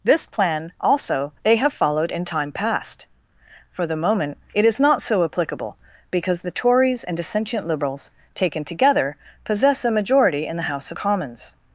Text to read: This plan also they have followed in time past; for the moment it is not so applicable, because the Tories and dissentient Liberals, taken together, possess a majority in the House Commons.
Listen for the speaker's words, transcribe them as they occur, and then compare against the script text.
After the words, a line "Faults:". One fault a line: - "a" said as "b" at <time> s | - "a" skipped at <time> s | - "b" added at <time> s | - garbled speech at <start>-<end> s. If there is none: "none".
This plan also they have followed in time past; for the moment it is not so applicable, because the Tories and dissentient Liberals, taken together, possess a majority in the House Commons.
Faults:
none